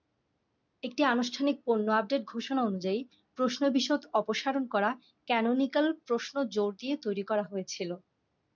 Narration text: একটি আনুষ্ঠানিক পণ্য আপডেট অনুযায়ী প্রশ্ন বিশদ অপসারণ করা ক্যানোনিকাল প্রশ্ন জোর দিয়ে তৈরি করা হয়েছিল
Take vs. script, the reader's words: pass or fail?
fail